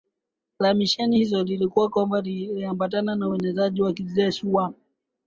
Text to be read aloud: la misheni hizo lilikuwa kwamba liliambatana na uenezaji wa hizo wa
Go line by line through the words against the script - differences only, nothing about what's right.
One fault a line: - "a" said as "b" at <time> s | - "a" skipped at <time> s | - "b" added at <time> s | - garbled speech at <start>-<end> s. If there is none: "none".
- "hizo" said as "kijeshi" at 3.9 s